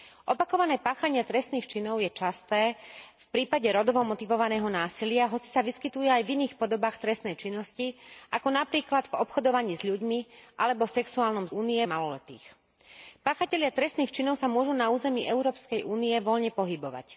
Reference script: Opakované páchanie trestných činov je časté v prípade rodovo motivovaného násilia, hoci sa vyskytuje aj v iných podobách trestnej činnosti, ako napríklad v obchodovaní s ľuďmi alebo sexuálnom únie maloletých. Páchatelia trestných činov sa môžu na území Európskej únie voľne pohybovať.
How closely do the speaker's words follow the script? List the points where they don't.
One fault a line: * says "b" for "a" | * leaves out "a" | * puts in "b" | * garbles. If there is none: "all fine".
all fine